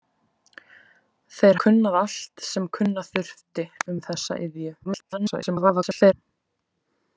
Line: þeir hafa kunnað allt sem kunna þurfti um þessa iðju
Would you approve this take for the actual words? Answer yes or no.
no